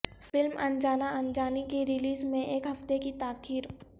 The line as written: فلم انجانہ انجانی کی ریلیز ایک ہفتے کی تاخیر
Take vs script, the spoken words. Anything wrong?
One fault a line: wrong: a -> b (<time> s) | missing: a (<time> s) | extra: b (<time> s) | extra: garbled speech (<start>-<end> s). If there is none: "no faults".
extra: میں (2.2 s)